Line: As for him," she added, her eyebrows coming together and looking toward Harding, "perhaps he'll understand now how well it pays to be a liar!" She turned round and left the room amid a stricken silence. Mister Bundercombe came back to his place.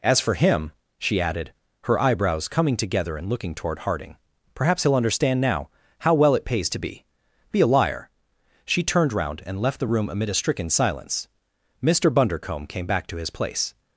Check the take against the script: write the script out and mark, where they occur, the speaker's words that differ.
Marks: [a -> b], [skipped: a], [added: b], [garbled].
As for him," she added, her eyebrows coming together and looking toward Harding, "perhaps he'll understand now how well it pays to be [added: be] a liar!" She turned round and left the room amid a stricken silence. Mister Bundercombe came back to his place.